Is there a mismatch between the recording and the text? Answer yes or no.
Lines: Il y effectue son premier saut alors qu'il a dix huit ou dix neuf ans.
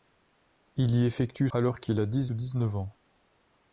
yes